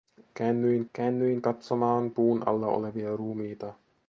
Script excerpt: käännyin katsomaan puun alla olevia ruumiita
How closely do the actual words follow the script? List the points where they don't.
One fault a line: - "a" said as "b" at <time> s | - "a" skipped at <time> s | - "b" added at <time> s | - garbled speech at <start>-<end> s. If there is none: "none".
- "käännyin" added at 0.9 s